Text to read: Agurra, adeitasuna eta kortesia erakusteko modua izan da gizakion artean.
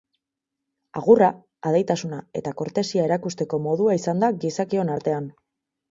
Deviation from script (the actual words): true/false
false